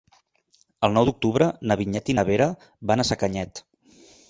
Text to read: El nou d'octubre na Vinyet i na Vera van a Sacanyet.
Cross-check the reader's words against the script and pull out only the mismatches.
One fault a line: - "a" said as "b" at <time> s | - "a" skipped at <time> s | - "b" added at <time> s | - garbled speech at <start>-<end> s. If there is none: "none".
none